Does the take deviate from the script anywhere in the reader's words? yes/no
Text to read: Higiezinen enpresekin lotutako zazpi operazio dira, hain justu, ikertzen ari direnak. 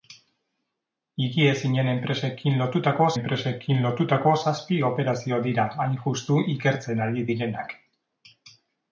yes